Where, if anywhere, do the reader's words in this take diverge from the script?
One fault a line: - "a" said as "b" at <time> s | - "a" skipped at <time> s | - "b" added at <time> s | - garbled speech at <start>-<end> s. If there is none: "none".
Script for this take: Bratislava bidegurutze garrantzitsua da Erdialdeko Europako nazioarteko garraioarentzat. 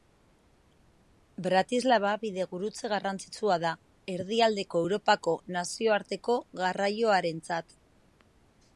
none